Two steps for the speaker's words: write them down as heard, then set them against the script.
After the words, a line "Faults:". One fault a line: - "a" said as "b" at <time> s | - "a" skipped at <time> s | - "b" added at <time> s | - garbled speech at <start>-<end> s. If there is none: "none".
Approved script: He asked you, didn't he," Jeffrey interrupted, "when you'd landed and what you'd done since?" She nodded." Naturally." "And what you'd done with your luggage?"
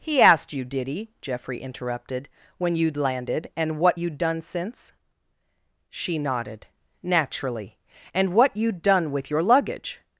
He asked you, did he," Jeffrey interrupted, "when you'd landed and what you'd done since?" She nodded." Naturally." "And what you'd done with your luggage?"
Faults:
- "didn't" said as "did" at 0.7 s